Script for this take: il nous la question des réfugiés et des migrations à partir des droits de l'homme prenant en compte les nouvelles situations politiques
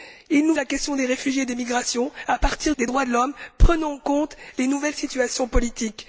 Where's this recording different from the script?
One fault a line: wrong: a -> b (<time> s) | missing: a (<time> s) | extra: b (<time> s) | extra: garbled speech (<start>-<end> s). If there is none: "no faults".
no faults